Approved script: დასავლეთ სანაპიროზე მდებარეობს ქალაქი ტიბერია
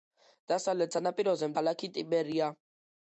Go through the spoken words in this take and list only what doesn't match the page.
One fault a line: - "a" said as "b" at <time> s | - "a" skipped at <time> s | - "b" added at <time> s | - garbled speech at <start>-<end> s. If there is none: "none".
- "მდებარეობს" skipped at 1.5 s